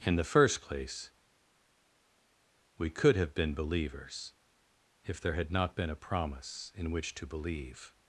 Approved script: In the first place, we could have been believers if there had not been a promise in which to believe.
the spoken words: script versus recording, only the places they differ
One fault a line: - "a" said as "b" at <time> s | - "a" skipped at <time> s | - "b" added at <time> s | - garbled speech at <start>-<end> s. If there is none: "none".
none